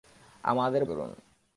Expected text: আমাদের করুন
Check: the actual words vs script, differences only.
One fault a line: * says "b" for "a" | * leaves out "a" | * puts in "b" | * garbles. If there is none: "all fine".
all fine